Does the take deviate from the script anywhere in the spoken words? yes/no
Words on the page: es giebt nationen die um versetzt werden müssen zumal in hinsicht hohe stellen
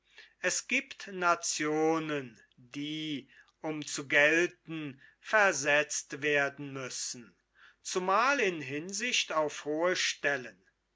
yes